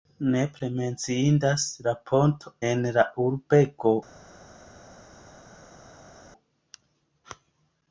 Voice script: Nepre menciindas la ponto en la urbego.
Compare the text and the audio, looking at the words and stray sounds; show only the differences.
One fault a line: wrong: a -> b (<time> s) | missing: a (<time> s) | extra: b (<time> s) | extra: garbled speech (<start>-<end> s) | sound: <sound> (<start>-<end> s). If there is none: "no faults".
no faults